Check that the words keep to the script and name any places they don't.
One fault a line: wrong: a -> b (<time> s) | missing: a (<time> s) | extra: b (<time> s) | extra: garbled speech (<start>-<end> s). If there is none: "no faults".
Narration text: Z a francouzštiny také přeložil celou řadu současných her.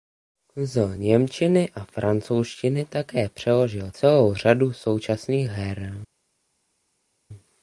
extra: němčiny (1.0 s)